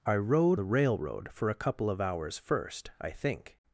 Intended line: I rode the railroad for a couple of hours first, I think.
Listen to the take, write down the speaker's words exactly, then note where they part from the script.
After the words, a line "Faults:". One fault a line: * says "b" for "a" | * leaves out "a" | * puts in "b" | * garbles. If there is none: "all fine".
I rode the railroad for a couple of hours first, I think.
Faults:
all fine